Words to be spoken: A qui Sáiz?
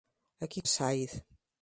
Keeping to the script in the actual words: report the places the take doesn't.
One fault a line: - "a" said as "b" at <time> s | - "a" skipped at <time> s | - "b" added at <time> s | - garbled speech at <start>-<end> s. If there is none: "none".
none